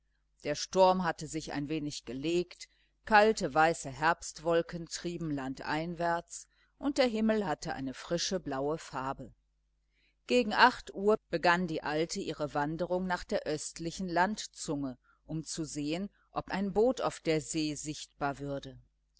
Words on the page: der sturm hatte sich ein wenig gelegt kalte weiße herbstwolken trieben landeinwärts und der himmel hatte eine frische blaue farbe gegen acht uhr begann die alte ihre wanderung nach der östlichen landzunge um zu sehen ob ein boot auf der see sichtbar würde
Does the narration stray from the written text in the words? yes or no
no